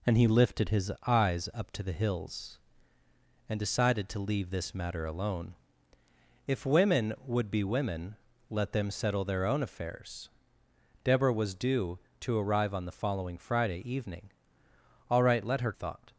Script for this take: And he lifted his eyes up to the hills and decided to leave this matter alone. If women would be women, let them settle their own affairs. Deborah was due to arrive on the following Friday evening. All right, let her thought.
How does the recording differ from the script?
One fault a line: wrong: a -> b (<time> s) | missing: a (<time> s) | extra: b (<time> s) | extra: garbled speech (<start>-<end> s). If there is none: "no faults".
no faults